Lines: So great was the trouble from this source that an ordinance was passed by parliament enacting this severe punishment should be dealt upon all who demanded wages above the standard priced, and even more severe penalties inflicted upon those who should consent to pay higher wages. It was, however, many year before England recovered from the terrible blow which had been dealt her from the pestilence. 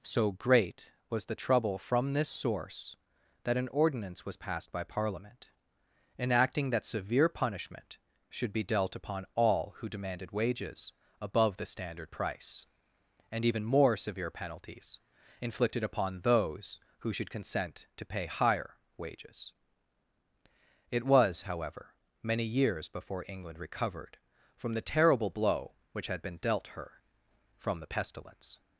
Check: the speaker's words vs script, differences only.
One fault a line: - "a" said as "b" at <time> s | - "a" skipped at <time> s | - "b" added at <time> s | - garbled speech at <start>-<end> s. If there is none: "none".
- "this" said as "that" at 6.7 s
- "priced" said as "price" at 12.1 s
- "year" said as "years" at 22.4 s